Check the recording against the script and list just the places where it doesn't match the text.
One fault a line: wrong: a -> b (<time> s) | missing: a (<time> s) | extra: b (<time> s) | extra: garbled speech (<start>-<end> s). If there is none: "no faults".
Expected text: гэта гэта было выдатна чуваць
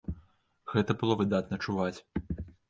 missing: гэта (0.9 s)